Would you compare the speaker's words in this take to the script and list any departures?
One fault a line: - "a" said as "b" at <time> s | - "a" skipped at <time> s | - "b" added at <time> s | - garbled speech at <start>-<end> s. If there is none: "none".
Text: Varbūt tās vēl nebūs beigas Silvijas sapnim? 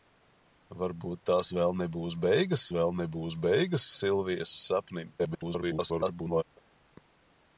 - "vēl nebūs beigas" added at 2.8 s
- garbled speech at 5.2-6.4 s